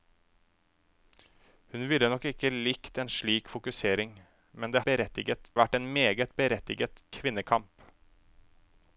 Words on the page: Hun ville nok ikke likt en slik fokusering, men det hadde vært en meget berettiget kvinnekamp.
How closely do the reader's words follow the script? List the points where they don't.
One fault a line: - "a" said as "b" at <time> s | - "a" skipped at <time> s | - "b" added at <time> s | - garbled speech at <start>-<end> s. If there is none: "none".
- "hadde" said as "berettiget" at 4.9 s